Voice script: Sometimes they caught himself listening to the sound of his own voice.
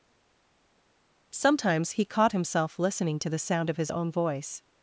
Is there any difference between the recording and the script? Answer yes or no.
yes